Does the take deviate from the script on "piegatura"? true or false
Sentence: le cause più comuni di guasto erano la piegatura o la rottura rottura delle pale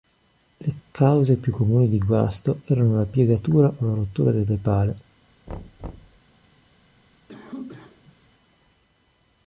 false